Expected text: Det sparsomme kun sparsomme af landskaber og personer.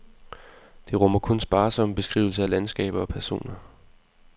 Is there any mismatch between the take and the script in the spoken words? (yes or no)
yes